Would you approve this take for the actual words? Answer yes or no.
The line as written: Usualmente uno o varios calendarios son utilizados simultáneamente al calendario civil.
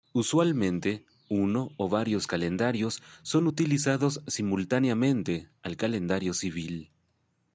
yes